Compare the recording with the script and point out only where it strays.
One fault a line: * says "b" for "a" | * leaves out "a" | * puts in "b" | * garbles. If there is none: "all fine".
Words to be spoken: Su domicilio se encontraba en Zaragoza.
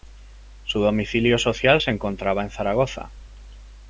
* puts in "social"